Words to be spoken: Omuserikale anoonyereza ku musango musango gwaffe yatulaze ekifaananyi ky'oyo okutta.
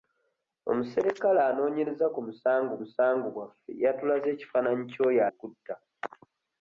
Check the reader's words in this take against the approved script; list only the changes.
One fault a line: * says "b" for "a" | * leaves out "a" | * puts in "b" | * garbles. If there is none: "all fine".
all fine